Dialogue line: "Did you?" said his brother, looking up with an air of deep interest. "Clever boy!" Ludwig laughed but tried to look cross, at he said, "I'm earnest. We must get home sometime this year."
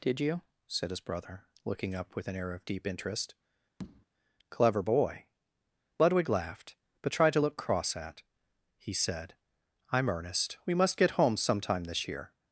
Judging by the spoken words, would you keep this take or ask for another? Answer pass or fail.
pass